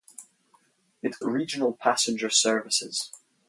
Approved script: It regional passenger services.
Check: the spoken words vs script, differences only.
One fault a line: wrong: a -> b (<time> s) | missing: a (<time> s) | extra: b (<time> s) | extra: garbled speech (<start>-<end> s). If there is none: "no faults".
no faults